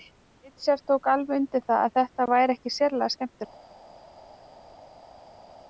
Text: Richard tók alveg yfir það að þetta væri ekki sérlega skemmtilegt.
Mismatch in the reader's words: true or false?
true